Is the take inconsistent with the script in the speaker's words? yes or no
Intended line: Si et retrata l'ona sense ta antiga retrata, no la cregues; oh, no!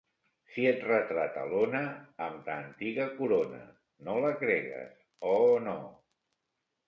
yes